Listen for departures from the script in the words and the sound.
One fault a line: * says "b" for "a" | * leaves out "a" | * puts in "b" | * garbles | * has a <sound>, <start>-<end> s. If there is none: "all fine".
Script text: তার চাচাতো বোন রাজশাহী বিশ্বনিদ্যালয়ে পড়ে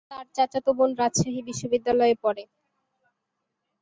all fine